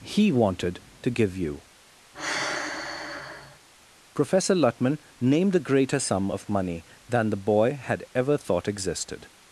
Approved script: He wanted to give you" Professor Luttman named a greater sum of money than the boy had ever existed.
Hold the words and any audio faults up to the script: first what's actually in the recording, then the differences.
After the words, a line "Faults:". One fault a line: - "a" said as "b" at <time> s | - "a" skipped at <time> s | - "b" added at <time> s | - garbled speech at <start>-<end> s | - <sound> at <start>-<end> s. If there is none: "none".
He wanted to give you" Professor Luttman named a greater sum of money than the boy had ever thought existed.
Faults:
- sigh at 2.1-3.6 s
- "thought" added at 8.4 s